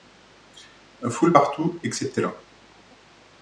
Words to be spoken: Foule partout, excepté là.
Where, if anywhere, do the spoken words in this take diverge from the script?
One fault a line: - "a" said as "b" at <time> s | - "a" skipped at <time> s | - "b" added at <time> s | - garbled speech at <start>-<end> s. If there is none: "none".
none